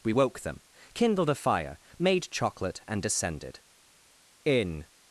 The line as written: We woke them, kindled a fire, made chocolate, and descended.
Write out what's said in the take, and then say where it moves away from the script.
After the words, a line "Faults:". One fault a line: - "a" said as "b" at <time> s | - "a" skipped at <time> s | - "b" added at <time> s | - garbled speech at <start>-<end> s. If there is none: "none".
We woke them, kindled a fire, made chocolate, and descended. In
Faults:
- "In" added at 4.4 s